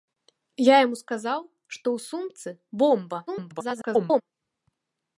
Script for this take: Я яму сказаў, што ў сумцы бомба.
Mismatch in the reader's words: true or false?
true